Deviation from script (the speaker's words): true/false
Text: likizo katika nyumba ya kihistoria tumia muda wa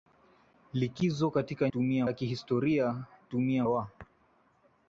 true